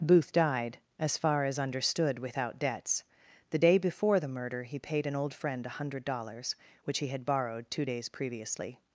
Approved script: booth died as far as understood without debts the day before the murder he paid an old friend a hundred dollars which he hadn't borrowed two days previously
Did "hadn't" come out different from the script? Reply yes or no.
yes